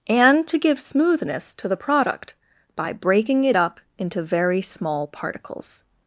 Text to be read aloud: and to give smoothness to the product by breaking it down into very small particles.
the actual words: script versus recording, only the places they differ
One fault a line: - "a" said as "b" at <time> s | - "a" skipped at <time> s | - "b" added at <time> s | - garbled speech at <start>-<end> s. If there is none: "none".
- "down" said as "up" at 3.6 s